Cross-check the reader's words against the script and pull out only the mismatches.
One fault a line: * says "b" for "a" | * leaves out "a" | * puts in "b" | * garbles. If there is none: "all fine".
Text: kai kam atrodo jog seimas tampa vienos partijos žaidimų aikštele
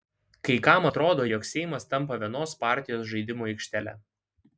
all fine